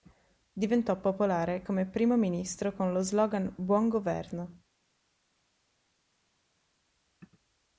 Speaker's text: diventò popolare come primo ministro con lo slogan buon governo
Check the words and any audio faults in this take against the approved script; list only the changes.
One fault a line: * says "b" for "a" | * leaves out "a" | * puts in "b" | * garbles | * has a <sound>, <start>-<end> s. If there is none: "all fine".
all fine